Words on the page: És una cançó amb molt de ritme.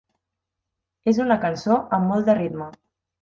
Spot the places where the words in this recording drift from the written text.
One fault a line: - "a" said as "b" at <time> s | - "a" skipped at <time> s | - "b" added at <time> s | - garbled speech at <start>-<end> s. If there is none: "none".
none